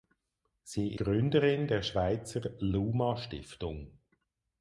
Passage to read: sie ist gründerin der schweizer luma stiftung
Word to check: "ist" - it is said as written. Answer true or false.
false